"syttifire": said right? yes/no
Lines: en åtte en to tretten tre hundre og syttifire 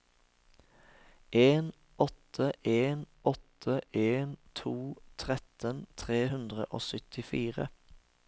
yes